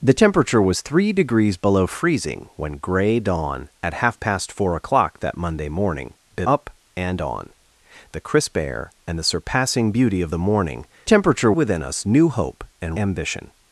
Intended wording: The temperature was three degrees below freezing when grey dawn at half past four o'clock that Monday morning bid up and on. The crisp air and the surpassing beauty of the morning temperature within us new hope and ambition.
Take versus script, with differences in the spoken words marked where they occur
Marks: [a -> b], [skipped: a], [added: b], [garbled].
The temperature was three degrees below freezing when grey dawn at half past four o'clock that Monday morning bid up and on. The crisp air and the surpassing beauty of the morning temperature within us new hope and ambition.